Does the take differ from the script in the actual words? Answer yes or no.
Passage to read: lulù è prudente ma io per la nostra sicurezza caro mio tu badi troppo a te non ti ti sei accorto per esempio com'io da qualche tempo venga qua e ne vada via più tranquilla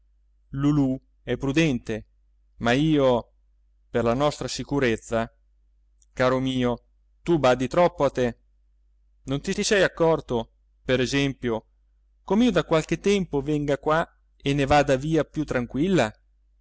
no